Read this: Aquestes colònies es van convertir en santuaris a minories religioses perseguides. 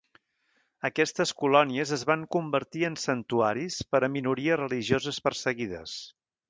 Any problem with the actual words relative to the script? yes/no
yes